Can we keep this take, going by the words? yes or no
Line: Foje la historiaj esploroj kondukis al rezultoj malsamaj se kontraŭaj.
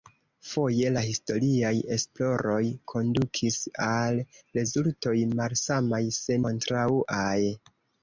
yes